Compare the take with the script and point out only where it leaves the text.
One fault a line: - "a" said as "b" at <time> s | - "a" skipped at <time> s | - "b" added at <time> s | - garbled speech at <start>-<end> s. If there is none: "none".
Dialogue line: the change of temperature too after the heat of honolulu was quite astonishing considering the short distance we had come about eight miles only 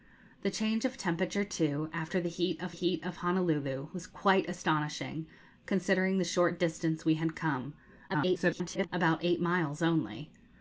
- "heat of" added at 2.7 s
- garbled speech at 8.1-8.9 s